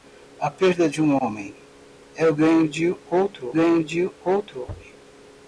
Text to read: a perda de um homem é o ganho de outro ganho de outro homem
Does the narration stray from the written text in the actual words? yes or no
no